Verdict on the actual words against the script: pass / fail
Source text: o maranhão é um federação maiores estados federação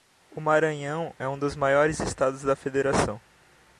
fail